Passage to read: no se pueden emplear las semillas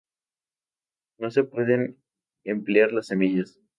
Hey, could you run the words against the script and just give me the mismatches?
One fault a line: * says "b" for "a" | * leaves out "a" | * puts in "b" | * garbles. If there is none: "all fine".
all fine